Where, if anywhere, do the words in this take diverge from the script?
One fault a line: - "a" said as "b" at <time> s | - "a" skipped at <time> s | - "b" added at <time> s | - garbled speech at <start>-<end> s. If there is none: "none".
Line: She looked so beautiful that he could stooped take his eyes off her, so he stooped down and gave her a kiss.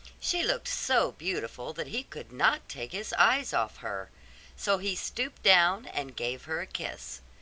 - "stooped" said as "not" at 2.3 s